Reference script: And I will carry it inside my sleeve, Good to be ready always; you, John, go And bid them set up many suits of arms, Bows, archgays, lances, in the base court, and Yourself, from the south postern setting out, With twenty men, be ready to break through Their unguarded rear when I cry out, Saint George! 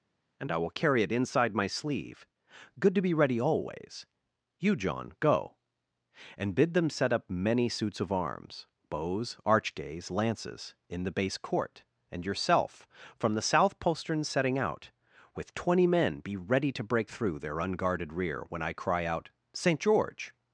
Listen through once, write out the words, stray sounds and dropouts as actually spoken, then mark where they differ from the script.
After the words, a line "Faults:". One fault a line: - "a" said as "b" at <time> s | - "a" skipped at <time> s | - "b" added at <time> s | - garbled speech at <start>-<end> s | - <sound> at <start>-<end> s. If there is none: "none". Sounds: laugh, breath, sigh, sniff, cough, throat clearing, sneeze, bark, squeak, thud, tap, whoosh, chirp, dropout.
And I will carry it inside my sleeve, Good to be ready always; you, John, go And bid them set up many suits of arms, Bows, archgays, lances, in the base court, and Yourself, from the south postern setting out, With twenty men, be ready to break through Their unguarded rear when I cry out, Saint George!
Faults:
none